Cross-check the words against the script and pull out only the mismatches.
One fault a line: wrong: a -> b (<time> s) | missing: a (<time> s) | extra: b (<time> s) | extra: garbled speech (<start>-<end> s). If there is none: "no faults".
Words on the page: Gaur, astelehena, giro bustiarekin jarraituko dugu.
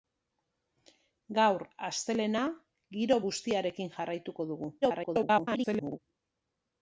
extra: garbled speech (4.8-6.0 s)